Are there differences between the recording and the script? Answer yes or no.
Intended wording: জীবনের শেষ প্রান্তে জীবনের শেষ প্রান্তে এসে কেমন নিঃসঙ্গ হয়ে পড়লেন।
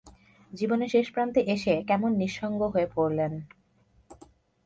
yes